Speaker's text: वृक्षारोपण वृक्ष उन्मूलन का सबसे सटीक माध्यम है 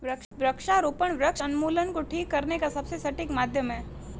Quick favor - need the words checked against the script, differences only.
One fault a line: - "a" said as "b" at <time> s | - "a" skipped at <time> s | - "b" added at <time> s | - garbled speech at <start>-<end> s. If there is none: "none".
- "को ठीक करने" added at 1.9 s